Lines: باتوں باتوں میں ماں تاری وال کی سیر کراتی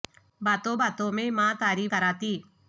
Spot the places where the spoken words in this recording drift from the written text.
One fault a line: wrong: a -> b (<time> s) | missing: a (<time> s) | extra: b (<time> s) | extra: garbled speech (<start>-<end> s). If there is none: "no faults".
missing: وال کی سیر (1.9 s)